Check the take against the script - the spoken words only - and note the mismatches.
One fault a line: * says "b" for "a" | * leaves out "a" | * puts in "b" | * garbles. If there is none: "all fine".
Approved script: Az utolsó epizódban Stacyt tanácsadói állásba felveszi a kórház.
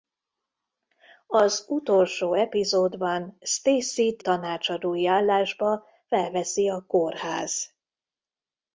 all fine